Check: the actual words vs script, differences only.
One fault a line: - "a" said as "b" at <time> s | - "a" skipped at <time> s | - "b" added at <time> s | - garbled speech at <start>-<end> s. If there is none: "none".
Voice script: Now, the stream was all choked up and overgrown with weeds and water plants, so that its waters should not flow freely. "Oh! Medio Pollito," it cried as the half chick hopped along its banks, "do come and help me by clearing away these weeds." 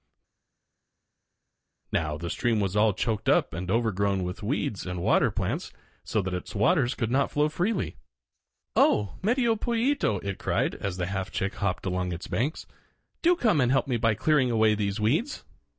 - "should" said as "could" at 6.9 s